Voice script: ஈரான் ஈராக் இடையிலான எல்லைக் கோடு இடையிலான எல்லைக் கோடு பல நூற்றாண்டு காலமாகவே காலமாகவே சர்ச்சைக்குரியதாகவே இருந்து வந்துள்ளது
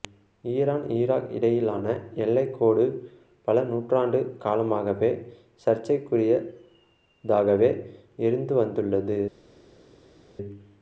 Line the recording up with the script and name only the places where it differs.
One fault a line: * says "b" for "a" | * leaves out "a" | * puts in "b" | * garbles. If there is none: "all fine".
* leaves out "இடையிலான எல்லைக் கோடு"
* leaves out "காலமாகவே"